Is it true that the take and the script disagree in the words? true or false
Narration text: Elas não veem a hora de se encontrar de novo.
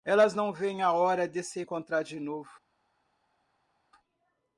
false